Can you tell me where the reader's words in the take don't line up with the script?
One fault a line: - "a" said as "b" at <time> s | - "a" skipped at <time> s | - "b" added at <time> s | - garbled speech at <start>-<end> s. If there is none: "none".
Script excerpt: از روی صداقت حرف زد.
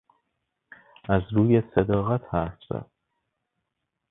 none